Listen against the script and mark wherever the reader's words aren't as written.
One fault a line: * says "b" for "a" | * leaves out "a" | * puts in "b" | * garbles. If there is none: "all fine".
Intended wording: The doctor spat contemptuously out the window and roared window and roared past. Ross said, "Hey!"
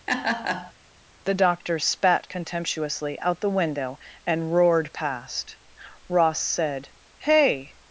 * leaves out "window and roared"